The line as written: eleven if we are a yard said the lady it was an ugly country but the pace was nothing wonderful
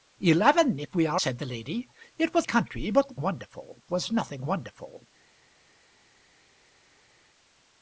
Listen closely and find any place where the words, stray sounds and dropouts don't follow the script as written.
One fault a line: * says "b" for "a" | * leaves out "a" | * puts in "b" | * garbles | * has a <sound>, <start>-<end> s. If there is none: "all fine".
* leaves out "a yard"
* leaves out "an ugly"
* says "wonderful" for "pace"